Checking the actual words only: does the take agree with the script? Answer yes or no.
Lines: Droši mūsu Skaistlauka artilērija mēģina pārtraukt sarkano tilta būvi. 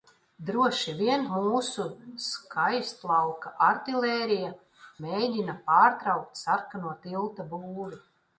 no